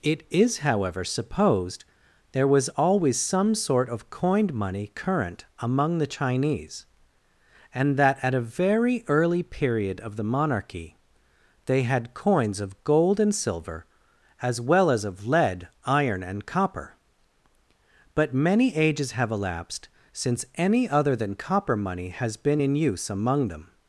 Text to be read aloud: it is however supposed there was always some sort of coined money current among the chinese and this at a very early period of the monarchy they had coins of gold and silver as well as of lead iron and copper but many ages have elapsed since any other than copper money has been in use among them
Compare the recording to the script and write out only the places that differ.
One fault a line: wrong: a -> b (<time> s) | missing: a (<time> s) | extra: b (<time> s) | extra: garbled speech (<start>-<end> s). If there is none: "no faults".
wrong: this -> that (8.0 s)